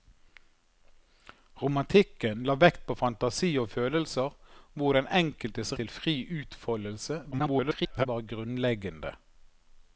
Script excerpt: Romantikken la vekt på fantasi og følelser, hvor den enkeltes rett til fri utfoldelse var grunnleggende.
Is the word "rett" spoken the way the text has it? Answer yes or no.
no